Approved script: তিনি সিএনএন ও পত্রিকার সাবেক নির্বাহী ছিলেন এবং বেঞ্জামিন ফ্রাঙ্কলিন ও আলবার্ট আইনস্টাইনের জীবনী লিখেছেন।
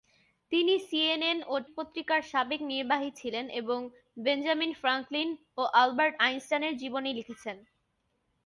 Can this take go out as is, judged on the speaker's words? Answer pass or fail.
pass